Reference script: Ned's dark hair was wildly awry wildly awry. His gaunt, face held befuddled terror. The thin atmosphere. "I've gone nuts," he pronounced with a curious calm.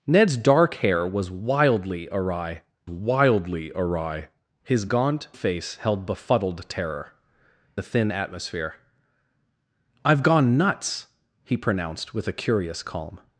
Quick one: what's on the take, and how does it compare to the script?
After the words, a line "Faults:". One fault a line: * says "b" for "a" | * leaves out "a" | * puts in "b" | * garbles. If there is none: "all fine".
Ned's dark hair was wildly awry wildly awry. His gaunt, face held befuddled terror. The thin atmosphere. "I've gone nuts," he pronounced with a curious calm.
Faults:
all fine